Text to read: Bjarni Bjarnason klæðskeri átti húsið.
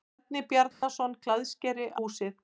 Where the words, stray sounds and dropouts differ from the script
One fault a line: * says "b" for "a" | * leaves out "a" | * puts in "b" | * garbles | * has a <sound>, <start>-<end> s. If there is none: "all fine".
* has a dropout, 0.7-0.8 s
* leaves out "átti"